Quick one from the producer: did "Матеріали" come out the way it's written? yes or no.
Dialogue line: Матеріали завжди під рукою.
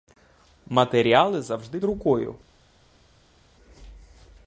yes